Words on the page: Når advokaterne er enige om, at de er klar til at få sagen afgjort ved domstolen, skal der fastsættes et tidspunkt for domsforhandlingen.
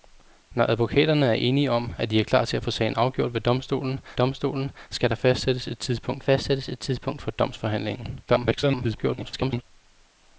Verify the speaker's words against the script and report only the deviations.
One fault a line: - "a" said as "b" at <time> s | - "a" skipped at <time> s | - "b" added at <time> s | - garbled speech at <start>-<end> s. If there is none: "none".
- "domstolen" added at 4.1 s
- "fastsættes et tidspunkt" added at 6.2 s
- garbled speech at 8.3-9.6 s